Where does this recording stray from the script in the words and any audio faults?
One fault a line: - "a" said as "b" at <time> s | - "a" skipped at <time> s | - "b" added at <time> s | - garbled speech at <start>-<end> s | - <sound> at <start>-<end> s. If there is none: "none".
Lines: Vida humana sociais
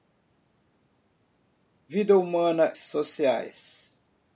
none